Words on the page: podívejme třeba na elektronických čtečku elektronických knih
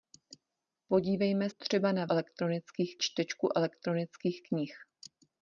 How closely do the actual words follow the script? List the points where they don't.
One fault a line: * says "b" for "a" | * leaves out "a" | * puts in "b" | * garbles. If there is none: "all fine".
all fine